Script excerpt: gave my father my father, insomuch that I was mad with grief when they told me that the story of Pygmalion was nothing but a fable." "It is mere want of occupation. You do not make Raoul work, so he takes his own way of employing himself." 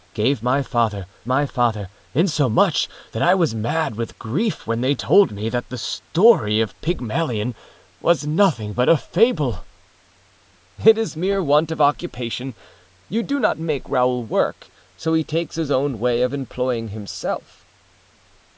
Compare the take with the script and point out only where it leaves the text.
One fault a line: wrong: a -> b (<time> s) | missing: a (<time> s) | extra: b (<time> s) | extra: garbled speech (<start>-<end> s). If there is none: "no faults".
no faults